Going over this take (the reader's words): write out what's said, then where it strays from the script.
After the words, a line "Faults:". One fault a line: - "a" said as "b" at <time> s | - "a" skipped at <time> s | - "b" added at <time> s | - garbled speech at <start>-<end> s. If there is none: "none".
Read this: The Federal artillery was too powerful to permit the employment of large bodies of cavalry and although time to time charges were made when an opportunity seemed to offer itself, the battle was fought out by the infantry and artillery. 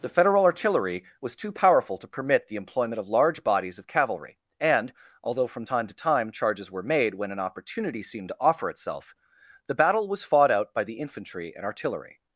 The Federal artillery was too powerful to permit the employment of large bodies of cavalry and although from time to time charges were made when an opportunity seemed to offer itself, the battle was fought out by the infantry and artillery.
Faults:
- "from" added at 5.5 s